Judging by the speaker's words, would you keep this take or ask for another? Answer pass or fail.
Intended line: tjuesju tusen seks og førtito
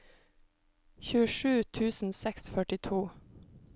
pass